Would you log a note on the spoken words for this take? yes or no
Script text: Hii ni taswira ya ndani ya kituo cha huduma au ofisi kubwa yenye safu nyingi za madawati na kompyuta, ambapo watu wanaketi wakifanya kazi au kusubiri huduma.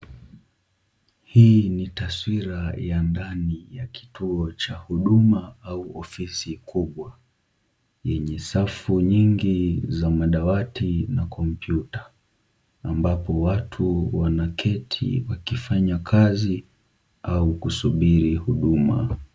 no